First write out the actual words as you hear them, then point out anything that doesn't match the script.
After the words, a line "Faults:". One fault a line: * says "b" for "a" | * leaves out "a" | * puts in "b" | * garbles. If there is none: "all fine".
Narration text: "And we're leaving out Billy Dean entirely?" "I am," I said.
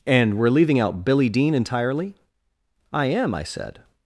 "And we're leaving out Billy Dean entirely?" "I am," I said.
Faults:
all fine